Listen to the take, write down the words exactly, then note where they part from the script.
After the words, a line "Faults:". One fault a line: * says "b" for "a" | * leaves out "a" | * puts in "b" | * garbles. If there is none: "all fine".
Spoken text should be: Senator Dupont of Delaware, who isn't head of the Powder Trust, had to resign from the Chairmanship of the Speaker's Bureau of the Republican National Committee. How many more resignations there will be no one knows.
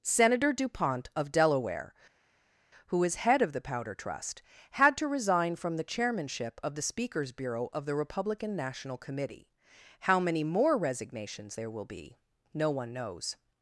Senator Dupont of Delaware, who is head of the Powder Trust, had to resign from the Chairmanship of the Speaker's Bureau of the Republican National Committee. How many more resignations there will be no one knows.
Faults:
* says "is" for "isn't"